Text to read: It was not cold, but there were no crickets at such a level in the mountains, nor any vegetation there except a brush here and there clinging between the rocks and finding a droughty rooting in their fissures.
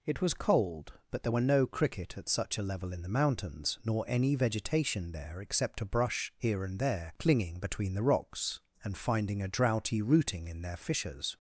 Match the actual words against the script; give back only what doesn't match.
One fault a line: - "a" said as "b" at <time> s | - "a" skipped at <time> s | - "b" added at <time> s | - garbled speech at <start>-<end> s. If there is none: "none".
- "not" skipped at 0.3 s
- "crickets" said as "cricket" at 1.7 s